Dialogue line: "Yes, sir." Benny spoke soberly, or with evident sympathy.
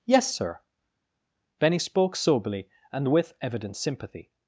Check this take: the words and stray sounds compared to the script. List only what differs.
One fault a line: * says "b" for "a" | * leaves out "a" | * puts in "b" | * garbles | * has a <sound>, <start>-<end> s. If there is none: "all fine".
* says "and" for "or"